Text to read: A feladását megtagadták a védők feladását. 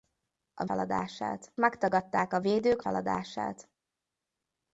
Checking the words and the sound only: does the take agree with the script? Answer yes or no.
yes